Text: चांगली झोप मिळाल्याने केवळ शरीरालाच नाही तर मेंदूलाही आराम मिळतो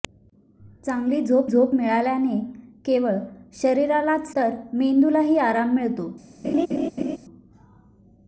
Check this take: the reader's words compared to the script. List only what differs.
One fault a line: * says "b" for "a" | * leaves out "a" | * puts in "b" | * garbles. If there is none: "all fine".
* puts in "झोप"
* leaves out "नाही"